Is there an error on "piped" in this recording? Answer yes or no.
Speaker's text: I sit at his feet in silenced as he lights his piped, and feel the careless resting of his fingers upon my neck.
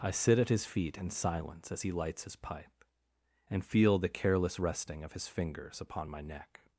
yes